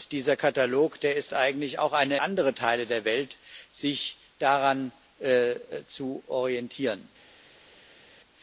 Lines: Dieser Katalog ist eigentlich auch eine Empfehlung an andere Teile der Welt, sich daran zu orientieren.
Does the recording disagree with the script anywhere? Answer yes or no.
yes